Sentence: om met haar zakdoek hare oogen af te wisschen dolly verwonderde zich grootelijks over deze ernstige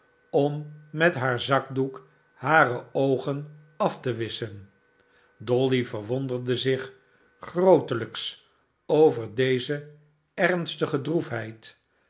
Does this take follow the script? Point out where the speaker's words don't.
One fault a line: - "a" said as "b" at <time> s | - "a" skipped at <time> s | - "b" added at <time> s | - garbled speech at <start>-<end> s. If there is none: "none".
none